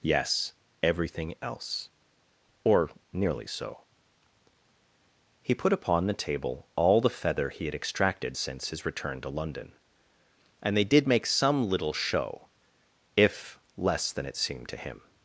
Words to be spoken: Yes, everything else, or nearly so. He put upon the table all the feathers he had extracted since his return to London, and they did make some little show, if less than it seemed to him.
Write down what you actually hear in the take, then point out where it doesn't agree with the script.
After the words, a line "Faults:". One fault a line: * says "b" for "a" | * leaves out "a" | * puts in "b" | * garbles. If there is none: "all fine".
Yes, everything else, or nearly so. He put upon the table all the feather he had extracted since his return to London, and they did make some little show, if less than it seemed to him.
Faults:
* says "feather" for "feathers"